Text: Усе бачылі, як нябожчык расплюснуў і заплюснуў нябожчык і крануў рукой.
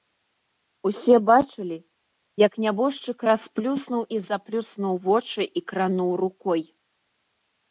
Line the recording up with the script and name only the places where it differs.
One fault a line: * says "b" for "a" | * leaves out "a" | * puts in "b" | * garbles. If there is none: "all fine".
* says "вочы" for "нябожчык"